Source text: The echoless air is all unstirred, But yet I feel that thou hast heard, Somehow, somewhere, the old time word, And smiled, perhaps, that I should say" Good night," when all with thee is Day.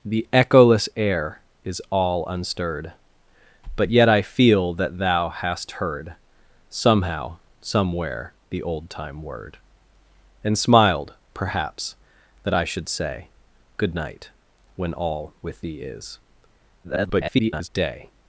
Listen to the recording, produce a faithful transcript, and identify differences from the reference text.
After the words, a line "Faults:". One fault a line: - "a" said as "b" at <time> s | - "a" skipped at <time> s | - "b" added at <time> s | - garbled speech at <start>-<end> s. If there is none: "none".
The echoless air is all unstirred, But yet I feel that thou hast heard, Somehow, somewhere, the old time word, And smiled, perhaps, that I should say" Good night," when all with thee is [garbled] Day.
Faults:
- garbled speech at 16.8-17.7 s